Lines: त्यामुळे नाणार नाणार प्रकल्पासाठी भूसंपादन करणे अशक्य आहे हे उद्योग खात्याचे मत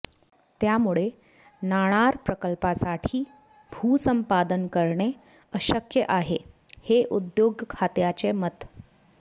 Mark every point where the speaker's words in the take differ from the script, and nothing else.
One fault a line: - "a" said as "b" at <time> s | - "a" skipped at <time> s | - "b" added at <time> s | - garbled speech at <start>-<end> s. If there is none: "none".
- "नाणार" skipped at 2.1 s